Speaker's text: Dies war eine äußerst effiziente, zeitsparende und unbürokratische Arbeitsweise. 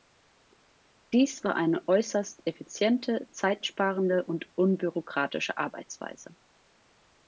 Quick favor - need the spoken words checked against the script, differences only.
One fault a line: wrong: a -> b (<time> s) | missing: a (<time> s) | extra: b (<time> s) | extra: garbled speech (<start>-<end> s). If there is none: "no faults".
no faults